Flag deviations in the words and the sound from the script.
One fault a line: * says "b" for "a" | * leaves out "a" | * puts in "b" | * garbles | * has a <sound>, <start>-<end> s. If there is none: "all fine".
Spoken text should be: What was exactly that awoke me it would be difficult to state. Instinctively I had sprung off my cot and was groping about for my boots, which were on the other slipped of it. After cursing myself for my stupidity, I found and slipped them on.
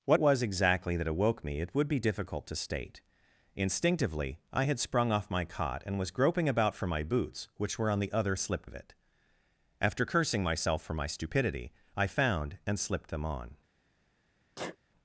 * has a sneeze, 14.6-14.8 s